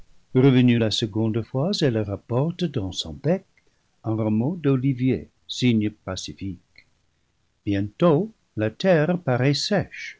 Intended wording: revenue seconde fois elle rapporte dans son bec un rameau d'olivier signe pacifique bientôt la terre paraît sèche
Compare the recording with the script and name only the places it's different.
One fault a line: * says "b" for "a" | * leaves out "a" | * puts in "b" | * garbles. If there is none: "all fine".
* puts in "la"